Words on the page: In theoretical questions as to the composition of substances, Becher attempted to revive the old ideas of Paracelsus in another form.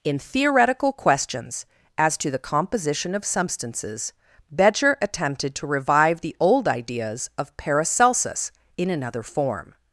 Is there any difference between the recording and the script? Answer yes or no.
no